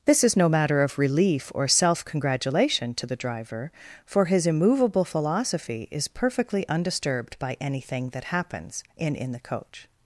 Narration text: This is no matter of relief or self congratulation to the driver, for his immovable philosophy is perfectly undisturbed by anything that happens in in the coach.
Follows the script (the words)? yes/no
yes